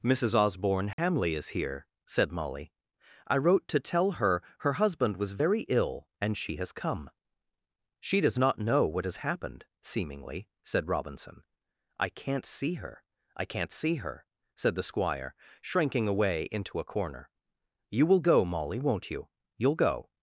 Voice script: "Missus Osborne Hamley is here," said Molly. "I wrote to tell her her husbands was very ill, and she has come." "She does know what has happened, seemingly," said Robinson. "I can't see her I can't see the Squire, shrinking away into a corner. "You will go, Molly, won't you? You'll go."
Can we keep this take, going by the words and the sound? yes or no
no